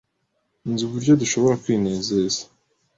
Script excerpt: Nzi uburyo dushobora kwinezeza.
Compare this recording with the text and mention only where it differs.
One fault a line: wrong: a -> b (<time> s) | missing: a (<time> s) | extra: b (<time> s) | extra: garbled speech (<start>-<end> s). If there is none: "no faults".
no faults